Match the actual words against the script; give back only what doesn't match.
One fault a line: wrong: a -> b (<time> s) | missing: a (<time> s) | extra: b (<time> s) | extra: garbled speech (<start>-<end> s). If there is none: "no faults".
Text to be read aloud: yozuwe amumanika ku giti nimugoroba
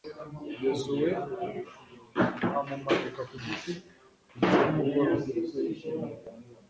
extra: kugeza (4.3 s)